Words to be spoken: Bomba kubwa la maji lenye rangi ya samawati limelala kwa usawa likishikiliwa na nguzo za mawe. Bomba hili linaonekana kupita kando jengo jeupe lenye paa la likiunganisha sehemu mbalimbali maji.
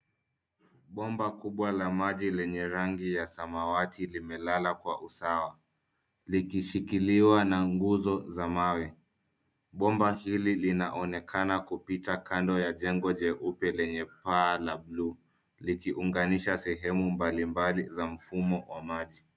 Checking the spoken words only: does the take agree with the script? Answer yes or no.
no